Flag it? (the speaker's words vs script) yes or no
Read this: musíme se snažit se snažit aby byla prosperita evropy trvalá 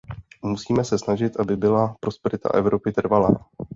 yes